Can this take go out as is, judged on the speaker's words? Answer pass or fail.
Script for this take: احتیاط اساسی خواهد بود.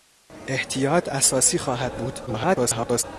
fail